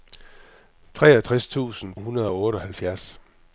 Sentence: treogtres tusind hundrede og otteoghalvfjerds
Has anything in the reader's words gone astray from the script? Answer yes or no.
no